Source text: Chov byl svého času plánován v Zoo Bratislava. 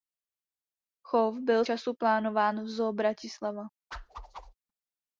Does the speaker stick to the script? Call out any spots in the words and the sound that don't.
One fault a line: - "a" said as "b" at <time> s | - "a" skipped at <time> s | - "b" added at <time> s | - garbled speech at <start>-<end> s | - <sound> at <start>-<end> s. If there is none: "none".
- "svého" skipped at 1.6 s
- whoosh at 3.9-4.5 s